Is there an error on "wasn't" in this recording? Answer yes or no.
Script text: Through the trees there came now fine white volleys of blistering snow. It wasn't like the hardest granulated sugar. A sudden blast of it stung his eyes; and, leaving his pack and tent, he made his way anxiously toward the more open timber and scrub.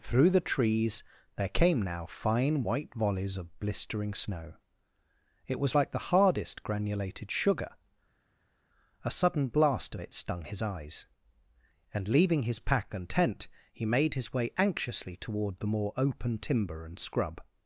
yes